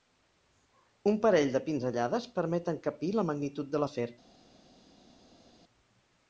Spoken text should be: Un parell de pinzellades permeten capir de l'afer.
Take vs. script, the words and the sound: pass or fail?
fail